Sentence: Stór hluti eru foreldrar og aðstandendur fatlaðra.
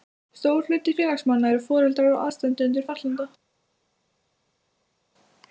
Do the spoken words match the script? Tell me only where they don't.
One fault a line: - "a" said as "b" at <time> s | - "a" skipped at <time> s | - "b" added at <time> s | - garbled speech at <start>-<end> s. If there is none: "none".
- "félagsmanna" added at 1.0 s